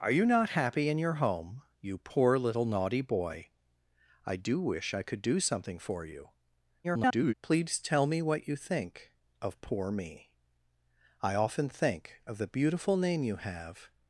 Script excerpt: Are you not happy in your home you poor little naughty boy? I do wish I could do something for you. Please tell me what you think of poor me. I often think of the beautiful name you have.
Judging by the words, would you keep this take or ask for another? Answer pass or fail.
fail